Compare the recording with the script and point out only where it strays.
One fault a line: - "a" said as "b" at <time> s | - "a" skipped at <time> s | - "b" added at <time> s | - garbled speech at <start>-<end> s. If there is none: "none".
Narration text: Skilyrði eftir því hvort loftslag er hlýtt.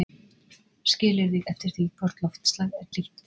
none